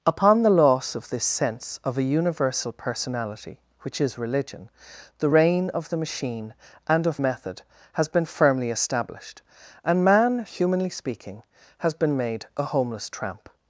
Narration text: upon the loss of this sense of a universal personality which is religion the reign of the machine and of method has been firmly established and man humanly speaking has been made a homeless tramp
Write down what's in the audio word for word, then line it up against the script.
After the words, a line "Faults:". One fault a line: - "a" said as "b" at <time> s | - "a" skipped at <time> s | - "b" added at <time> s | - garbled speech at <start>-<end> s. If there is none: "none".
upon the loss of this sense of a universal personality which is religion the reign of the machine and of method has been firmly established and man humanly speaking has been made a homeless tramp
Faults:
none